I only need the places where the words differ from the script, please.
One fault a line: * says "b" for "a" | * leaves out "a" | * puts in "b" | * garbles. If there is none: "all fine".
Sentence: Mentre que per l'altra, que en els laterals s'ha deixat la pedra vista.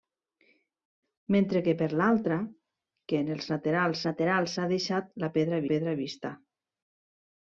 * puts in "laterals"
* puts in "pedra"